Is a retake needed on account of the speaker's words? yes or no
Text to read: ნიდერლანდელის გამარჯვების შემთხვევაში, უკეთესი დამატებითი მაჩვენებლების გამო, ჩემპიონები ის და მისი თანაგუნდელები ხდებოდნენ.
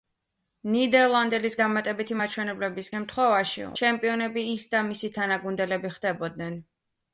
yes